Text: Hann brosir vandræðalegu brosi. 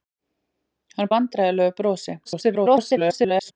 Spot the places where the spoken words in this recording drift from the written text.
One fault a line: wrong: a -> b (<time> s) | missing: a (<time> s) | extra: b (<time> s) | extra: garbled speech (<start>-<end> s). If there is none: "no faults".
missing: brosir (1.1 s)
extra: garbled speech (2.3-3.5 s)